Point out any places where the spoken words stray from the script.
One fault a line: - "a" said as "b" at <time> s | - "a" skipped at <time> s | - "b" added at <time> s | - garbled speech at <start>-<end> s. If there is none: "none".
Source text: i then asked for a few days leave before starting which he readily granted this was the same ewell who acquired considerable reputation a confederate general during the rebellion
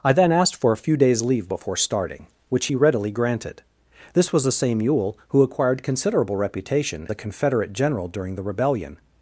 none